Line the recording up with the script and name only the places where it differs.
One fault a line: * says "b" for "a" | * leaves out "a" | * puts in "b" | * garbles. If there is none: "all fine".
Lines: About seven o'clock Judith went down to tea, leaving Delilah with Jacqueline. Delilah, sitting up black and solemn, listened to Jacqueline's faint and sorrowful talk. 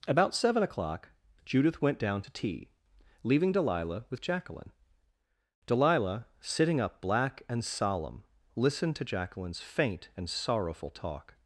all fine